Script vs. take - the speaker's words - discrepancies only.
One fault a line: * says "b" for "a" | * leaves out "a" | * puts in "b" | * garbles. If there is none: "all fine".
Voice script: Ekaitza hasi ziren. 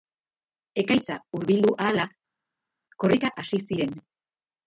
* puts in "hurbildu ahala korrika"